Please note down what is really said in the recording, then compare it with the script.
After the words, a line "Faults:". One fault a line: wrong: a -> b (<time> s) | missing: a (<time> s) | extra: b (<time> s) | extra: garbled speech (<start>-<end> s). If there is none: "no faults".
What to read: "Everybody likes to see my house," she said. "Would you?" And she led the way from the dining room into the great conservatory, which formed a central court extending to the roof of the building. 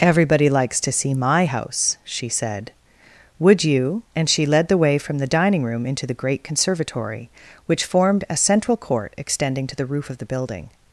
"Everybody likes to see my house," she said. "Would you?" And she led the way from the dining room into the great conservatory, which formed a central court extending to the roof of the building.
Faults:
no faults